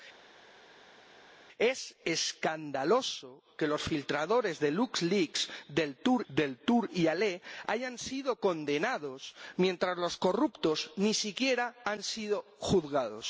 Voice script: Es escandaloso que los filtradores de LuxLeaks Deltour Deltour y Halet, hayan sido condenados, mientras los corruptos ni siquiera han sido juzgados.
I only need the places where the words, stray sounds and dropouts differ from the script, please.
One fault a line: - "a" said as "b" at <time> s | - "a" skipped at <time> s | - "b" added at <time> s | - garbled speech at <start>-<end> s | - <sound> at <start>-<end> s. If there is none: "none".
none